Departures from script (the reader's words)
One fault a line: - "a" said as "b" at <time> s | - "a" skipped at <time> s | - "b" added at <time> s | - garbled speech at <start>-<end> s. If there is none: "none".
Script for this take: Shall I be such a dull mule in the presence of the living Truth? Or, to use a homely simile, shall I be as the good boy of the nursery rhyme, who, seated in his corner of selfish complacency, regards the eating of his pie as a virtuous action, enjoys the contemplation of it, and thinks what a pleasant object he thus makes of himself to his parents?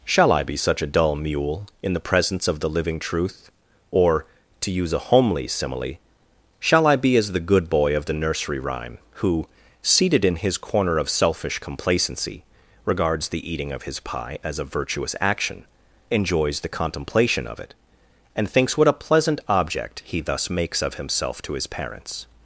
none